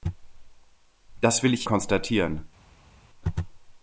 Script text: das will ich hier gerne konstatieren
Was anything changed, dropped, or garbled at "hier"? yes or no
yes